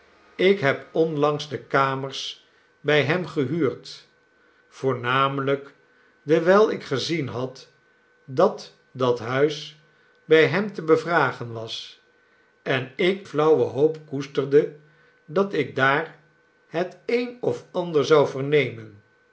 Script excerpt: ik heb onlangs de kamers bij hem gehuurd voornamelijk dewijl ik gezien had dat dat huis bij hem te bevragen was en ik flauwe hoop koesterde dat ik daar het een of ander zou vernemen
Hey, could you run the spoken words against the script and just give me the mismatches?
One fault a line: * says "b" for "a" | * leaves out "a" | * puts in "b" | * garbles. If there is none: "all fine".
all fine